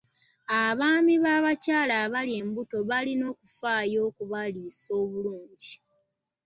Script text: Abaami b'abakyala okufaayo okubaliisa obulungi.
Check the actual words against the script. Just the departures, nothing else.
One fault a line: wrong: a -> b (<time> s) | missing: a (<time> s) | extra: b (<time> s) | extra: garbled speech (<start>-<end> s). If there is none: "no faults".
extra: abali embuto balina (2.0 s)